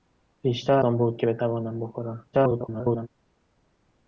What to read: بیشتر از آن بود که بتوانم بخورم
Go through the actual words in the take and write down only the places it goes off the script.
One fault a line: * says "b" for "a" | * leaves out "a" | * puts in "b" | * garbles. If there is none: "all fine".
* leaves out "از"
* garbles